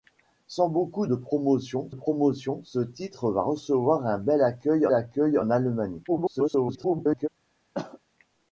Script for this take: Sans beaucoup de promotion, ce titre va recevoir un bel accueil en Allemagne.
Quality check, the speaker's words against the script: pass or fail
fail